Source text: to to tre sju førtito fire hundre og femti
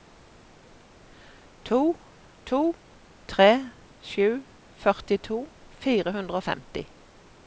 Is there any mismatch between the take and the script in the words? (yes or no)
no